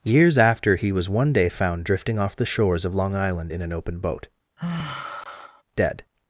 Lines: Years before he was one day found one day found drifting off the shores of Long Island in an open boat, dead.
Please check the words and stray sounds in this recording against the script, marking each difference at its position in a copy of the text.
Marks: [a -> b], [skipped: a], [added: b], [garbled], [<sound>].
Years [before -> after] he was one day found [skipped: one day found] drifting off the shores of Long Island in an open boat, [sigh] dead.